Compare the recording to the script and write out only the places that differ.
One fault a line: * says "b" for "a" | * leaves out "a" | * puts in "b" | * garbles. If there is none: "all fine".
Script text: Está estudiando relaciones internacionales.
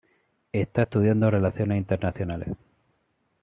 all fine